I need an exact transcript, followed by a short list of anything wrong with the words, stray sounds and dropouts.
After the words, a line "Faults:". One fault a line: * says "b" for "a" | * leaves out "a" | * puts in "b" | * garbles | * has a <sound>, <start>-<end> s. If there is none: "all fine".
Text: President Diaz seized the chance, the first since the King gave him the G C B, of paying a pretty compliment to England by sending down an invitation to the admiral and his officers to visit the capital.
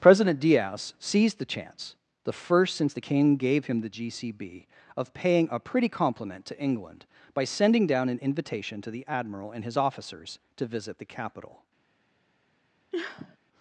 President Diaz seized the chance, the first since the King gave him the G C B, of paying a pretty compliment to England by sending down an invitation to the admiral and his officers to visit the capital.
Faults:
* has a sniff, 12.9-13.4 s